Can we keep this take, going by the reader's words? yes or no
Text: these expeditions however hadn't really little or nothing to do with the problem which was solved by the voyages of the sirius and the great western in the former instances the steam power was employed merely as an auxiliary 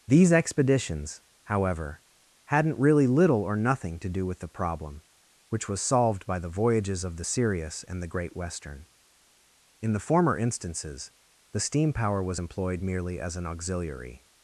yes